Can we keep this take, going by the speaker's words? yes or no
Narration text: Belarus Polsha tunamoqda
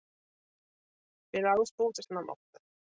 yes